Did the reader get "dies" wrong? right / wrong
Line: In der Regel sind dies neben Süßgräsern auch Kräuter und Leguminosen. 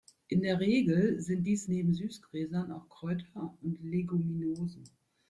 right